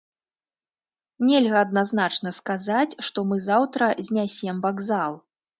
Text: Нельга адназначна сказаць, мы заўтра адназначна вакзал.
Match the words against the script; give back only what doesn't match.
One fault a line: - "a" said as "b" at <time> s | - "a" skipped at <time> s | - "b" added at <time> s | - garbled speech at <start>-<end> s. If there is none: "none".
- "што" added at 3.1 s
- "адназначна" said as "знясем" at 4.1 s